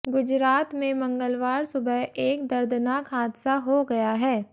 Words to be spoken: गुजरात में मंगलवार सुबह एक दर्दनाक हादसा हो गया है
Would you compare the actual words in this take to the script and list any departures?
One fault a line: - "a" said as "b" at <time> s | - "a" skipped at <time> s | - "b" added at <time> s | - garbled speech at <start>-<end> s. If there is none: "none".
none